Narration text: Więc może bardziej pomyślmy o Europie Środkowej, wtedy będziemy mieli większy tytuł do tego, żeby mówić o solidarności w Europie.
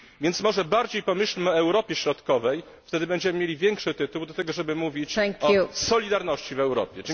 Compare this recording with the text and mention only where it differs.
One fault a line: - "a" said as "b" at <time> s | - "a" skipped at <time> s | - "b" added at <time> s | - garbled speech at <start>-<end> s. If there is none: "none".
none